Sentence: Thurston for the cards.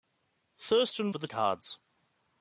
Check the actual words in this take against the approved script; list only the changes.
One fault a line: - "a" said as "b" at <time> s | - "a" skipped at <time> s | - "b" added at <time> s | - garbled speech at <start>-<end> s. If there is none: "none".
none